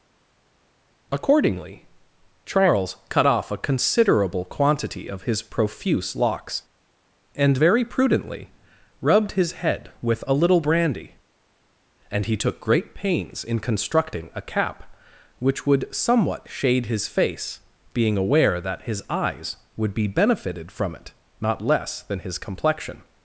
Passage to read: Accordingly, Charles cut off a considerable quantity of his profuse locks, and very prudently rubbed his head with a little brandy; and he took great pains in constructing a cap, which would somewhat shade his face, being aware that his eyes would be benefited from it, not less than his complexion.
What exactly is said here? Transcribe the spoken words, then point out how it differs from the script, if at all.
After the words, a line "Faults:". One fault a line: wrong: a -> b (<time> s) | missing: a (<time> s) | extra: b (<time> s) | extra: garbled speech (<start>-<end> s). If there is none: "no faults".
Accordingly, Charles cut off a considerable quantity of his profuse locks, and very prudently rubbed his head with a little brandy; and he took great pains in constructing a cap, which would somewhat shade his face, being aware that his eyes would be benefited from it, not less than his complexion.
Faults:
no faults